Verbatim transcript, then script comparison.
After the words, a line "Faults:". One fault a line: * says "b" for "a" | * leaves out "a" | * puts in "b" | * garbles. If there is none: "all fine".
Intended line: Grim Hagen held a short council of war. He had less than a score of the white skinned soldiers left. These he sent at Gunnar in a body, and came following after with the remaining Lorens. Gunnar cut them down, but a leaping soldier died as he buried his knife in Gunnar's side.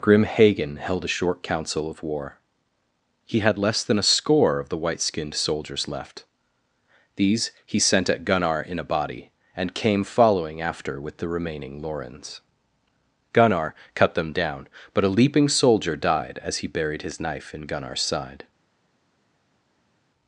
Grim Hagen held a short council of war. He had less than a score of the white skinned soldiers left. These he sent at Gunnar in a body, and came following after with the remaining Lorens. Gunnar cut them down, but a leaping soldier died as he buried his knife in Gunnar's side.
Faults:
all fine